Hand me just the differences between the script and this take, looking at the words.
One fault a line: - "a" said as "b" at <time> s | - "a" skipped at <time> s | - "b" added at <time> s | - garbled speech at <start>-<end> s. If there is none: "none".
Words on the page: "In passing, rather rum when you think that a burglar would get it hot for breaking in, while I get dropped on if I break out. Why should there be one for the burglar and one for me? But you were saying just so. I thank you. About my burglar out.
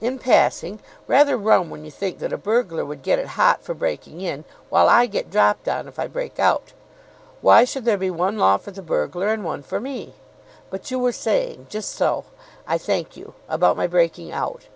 - "law" added at 8.4 s
- "burglar" said as "breaking" at 13.9 s